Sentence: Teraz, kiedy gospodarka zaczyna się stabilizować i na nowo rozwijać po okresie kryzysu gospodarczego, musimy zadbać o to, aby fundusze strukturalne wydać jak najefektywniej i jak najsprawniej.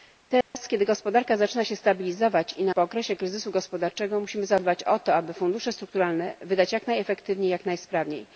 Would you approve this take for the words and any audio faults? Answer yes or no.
no